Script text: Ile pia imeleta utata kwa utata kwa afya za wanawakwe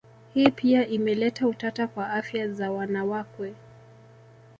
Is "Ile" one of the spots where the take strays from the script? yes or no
yes